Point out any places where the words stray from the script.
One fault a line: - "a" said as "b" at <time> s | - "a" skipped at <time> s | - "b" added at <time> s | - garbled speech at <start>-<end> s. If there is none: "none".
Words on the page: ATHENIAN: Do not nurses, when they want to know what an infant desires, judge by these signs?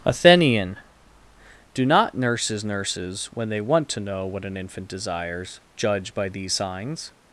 - "nurses" added at 2.6 s